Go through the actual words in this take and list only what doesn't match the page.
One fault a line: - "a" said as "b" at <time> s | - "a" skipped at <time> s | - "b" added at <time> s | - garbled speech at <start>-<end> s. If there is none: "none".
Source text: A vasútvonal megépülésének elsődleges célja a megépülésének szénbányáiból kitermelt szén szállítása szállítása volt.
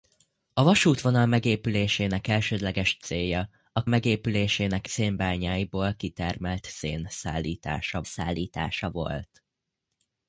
none